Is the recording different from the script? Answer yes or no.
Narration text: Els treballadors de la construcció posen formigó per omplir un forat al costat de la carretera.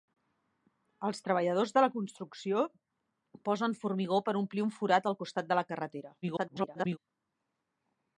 yes